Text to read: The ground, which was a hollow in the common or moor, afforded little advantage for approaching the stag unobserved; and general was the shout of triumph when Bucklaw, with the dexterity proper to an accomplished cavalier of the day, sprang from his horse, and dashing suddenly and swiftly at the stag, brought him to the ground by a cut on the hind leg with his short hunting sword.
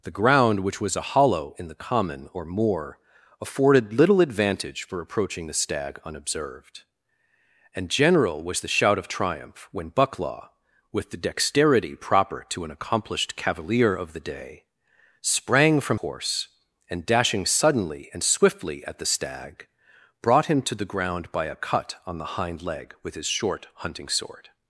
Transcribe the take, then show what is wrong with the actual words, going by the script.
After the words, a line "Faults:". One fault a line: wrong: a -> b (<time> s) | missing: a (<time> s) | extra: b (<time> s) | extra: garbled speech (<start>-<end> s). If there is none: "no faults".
The ground, which was a hollow in the common or moor, afforded little advantage for approaching the stag unobserved; and general was the shout of triumph when Bucklaw, with the dexterity proper to an accomplished cavalier of the day, sprang from horse, and dashing suddenly and swiftly at the stag, brought him to the ground by a cut on the hind leg with his short hunting sword.
Faults:
missing: his (16.0 s)